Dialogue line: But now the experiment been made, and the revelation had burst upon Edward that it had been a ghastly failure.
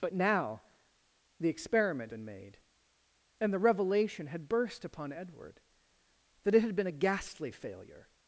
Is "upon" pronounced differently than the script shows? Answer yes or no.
no